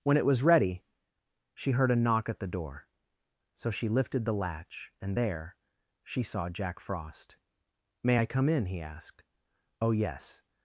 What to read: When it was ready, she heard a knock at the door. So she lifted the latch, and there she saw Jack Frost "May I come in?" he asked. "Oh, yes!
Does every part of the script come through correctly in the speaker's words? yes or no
yes